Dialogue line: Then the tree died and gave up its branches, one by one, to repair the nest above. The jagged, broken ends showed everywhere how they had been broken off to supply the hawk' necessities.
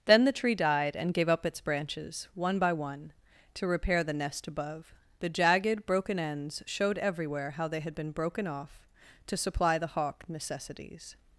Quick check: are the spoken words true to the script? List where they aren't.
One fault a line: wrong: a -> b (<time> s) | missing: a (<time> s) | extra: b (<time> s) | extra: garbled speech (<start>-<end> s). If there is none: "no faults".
no faults